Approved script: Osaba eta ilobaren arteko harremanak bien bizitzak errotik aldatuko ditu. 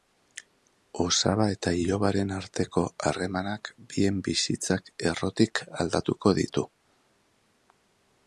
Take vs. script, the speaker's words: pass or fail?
pass